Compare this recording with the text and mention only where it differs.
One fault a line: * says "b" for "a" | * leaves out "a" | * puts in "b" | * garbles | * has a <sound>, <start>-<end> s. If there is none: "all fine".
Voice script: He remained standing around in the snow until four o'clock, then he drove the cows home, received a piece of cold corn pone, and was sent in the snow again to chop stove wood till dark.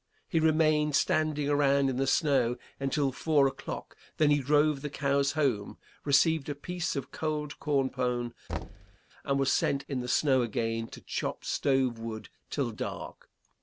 * has a thud, 8.5-9.0 s